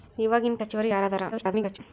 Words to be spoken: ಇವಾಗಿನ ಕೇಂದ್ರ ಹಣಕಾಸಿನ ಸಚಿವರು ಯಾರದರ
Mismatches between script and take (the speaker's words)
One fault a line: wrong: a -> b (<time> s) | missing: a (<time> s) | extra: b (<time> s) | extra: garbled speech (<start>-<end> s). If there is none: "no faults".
missing: ಕೇಂದ್ರ ಹಣಕಾಸಿನ (0.6 s)
extra: garbled speech (1.3-1.8 s)